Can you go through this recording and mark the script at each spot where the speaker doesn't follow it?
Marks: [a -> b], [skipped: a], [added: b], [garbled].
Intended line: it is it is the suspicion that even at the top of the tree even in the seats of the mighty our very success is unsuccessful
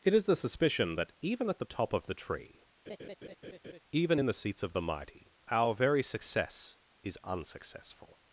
it is [skipped: it is] the suspicion that even at the top of the tree even in the seats of the mighty our very success is unsuccessful